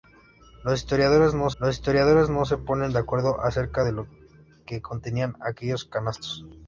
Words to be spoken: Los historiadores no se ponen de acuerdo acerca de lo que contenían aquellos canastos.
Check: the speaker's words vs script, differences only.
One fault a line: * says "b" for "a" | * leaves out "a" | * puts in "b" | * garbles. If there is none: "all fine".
* puts in "los historiadores no"